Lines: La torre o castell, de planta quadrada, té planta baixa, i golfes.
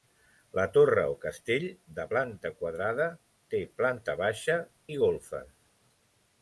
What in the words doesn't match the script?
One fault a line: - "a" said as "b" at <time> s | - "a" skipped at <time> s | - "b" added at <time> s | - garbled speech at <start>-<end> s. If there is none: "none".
none